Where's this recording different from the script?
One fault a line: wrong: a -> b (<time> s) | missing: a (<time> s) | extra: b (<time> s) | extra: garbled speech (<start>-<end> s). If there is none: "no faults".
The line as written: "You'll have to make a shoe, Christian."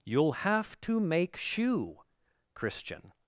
missing: a (1.4 s)